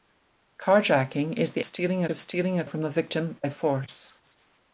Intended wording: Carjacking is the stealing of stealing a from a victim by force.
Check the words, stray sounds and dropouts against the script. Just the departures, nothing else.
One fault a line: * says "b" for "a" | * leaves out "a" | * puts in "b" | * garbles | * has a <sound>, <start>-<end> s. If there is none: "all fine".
all fine